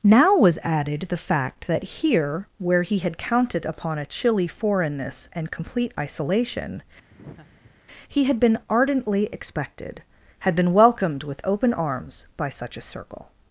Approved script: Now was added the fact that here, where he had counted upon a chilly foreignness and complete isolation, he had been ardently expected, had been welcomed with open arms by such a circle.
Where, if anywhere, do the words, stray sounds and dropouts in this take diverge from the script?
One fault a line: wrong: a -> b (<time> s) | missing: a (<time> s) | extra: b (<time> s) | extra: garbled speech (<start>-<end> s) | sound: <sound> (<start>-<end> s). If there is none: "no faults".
sound: laugh (7.1-7.8 s)